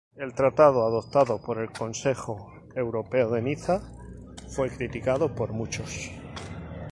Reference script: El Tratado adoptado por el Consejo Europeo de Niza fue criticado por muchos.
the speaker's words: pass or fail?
pass